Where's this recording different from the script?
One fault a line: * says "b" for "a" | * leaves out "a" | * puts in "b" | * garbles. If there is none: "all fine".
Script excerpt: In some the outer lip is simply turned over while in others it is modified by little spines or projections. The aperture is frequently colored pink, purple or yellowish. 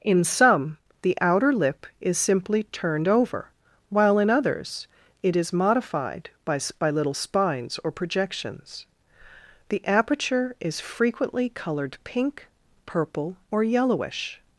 * puts in "by"